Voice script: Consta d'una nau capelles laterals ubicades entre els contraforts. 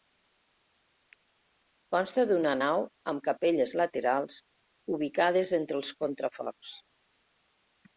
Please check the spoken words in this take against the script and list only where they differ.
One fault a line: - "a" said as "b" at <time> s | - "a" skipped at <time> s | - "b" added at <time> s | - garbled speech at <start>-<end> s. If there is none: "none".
- "amb" added at 3.1 s